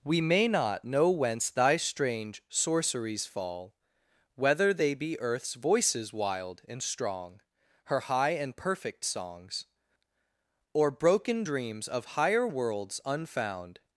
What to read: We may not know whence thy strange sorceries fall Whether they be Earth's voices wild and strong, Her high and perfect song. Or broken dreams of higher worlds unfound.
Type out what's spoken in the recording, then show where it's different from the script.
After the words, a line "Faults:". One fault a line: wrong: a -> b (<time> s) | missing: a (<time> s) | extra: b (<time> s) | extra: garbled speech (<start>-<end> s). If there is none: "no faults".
We may not know whence thy strange sorceries fall Whether they be Earth's voices wild and strong, Her high and perfect songs. Or broken dreams of higher worlds unfound.
Faults:
wrong: song -> songs (9.1 s)